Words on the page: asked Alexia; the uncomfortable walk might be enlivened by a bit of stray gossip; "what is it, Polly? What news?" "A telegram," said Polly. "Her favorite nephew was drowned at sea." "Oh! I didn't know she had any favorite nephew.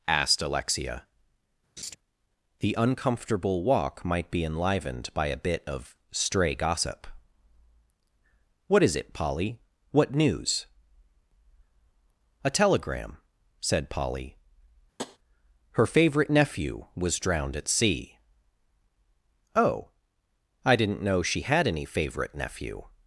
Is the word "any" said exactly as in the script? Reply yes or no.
yes